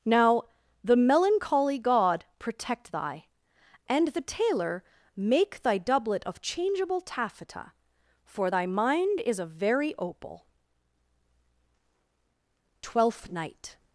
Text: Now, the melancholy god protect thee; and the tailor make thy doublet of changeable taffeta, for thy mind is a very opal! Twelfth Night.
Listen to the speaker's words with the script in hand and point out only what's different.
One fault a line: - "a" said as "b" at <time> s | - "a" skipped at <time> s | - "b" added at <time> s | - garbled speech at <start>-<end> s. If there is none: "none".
- "thee" said as "thy" at 2.9 s